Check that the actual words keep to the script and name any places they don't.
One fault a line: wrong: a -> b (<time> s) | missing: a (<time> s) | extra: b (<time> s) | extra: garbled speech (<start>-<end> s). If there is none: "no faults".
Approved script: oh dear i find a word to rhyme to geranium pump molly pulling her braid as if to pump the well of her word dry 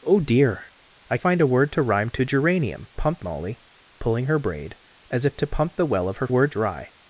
no faults